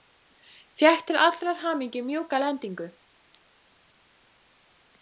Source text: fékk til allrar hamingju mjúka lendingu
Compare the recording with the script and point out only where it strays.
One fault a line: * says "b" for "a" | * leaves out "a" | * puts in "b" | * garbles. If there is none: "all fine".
all fine